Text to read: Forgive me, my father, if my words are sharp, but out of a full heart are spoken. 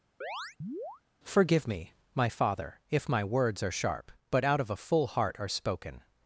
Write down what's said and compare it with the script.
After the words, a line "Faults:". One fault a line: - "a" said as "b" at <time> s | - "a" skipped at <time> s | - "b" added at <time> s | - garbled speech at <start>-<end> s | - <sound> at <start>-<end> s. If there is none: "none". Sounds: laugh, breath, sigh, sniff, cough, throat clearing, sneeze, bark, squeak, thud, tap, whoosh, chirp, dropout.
Forgive me, my father, if my words are sharp, but out of a full heart are spoken.
Faults:
- chirp at 0.2-1.0 s